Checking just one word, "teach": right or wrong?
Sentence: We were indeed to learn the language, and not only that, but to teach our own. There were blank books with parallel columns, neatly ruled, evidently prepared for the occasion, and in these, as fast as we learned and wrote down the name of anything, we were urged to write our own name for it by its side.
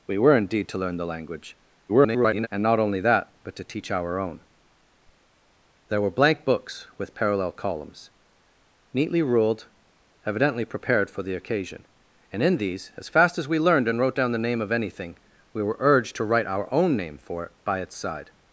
right